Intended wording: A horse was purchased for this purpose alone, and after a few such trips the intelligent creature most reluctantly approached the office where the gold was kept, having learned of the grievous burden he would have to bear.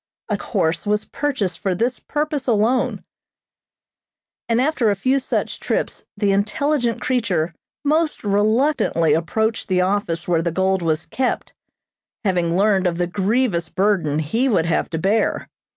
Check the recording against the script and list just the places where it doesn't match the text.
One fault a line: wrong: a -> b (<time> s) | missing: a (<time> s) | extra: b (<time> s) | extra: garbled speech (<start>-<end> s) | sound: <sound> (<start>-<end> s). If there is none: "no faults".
no faults